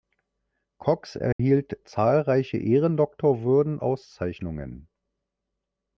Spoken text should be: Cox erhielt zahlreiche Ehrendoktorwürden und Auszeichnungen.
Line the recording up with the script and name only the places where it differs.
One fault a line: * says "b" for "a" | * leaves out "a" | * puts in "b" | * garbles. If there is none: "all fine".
* leaves out "und"